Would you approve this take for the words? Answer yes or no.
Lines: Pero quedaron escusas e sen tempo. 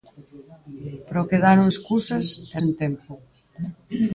yes